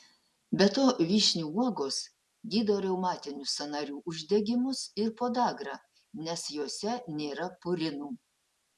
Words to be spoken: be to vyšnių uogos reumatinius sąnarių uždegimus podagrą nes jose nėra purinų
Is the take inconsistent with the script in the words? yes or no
yes